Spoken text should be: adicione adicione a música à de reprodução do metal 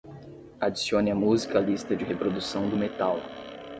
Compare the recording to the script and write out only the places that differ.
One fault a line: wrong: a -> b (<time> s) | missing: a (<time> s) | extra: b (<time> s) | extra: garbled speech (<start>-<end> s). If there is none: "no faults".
missing: adicione (1.1 s)
extra: lista (1.6 s)